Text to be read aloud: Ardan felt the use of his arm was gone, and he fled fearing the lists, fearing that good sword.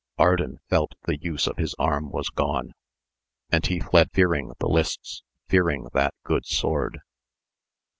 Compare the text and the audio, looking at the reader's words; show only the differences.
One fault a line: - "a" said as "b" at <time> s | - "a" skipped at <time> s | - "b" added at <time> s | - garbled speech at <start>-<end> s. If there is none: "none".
none